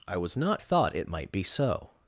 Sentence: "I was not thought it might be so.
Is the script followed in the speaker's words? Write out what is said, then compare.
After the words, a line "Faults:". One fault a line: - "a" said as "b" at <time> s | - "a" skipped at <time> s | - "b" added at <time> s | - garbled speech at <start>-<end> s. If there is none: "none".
"I was not thought it might be so.
Faults:
none